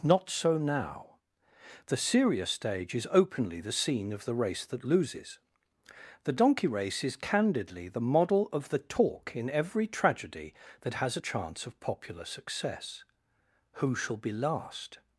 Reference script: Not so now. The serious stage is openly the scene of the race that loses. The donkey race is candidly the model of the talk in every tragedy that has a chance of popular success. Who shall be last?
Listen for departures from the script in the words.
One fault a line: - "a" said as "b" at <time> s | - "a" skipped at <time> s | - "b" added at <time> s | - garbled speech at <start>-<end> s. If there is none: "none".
none